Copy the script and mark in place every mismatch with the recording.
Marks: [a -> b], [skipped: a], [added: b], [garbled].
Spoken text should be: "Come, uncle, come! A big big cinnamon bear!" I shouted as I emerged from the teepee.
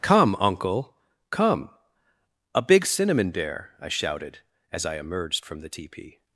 "Come, uncle, come! A big [skipped: big] cinnamon bear!" I shouted as I emerged from the teepee.